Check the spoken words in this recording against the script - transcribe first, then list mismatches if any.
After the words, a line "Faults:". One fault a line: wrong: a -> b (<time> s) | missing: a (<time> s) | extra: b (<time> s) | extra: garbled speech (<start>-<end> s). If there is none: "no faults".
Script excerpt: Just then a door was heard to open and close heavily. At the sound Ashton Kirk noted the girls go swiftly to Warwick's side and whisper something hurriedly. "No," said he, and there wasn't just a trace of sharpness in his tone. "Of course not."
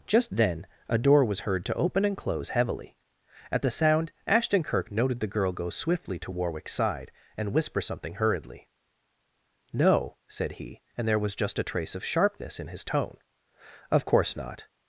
Just then a door was heard to open and close heavily. At the sound Ashton Kirk noted the girl go swiftly to Warwick's side and whisper something hurriedly. "No," said he, and there was just a trace of sharpness in his tone. "Of course not."
Faults:
wrong: girls -> girl (5.3 s)
wrong: wasn't -> was (11.2 s)